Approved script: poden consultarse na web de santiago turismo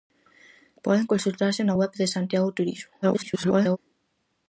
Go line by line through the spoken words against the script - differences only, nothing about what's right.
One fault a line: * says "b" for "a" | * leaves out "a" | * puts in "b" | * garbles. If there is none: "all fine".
* garbles